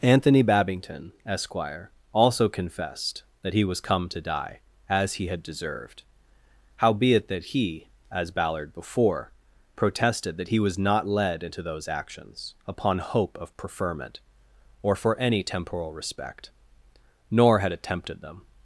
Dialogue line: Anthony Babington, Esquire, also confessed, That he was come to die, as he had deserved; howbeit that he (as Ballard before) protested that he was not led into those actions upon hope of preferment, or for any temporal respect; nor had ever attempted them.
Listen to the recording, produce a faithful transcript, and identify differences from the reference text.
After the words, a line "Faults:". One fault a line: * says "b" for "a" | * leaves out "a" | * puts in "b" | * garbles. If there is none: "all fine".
Anthony Babington, Esquire, also confessed, That he was come to die, as he had deserved; howbeit that he (as Ballard before) protested that he was not led into those actions upon hope of preferment, or for any temporal respect; nor had attempted them.
Faults:
* leaves out "ever"